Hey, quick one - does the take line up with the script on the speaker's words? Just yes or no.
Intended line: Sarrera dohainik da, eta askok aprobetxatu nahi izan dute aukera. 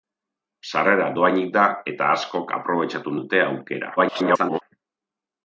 no